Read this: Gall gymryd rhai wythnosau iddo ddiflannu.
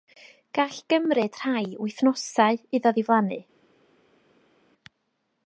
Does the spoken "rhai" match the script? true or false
true